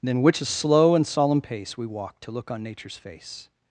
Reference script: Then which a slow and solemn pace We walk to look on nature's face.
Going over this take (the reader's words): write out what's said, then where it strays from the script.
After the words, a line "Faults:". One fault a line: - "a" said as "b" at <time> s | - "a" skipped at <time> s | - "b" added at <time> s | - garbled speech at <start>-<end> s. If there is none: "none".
Then which a slow and solemn pace We walk to look on nature's face.
Faults:
none